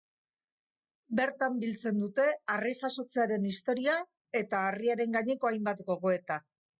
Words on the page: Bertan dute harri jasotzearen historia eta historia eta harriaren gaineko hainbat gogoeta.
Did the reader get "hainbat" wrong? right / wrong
right